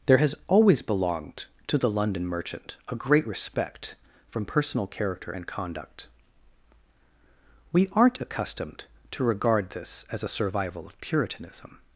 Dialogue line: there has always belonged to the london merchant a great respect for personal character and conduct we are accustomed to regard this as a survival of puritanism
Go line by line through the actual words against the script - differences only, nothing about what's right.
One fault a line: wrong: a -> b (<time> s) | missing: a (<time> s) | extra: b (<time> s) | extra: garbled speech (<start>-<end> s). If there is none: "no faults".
wrong: for -> from (4.3 s)
wrong: are -> aren't (7.9 s)